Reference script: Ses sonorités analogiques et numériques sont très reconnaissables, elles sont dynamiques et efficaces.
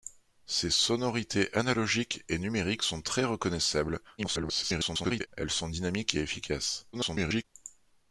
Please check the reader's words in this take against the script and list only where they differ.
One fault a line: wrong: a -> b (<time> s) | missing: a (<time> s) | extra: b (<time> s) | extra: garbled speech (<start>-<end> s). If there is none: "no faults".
extra: garbled speech (4.2-5.3 s)
extra: garbled speech (6.9-7.4 s)